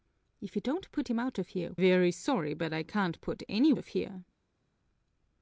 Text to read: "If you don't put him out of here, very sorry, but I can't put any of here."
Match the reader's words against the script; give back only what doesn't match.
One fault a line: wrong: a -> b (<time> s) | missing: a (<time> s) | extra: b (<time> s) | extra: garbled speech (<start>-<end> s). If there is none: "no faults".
no faults